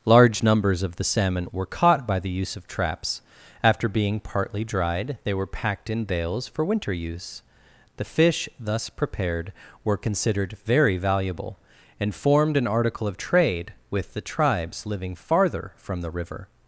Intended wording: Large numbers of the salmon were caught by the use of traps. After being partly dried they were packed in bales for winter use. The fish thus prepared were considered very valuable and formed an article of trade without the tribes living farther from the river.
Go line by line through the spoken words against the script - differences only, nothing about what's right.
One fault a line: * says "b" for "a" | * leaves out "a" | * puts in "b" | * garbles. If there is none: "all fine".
* says "with" for "without"